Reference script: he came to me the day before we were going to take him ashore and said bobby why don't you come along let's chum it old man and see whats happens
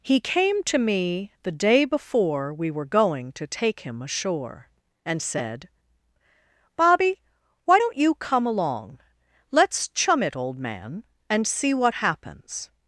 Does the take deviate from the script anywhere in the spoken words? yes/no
yes